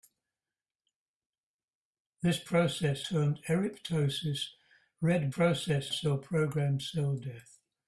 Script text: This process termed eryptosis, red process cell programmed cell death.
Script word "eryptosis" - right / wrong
right